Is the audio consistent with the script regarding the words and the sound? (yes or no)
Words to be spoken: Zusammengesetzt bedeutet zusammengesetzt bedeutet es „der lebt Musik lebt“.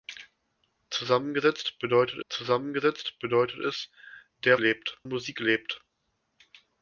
yes